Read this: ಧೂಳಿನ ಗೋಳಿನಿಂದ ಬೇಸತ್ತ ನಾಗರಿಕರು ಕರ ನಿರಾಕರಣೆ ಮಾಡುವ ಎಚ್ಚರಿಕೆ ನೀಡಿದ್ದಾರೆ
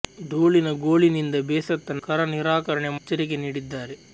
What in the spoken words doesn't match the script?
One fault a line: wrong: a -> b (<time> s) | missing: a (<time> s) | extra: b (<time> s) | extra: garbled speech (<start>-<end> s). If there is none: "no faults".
missing: ನಾಗರಿಕರು (2.0 s)
missing: ಮಾಡುವ (2.9 s)